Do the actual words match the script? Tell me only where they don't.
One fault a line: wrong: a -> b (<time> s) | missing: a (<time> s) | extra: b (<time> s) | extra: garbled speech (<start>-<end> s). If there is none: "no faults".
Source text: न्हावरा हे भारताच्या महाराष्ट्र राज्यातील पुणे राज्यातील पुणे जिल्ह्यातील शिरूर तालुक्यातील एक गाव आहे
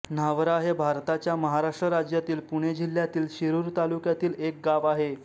missing: राज्यातील पुणे (2.7 s)